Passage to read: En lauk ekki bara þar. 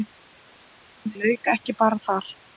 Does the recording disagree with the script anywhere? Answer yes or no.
no